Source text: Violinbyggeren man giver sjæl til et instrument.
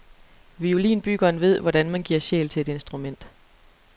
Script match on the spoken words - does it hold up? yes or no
no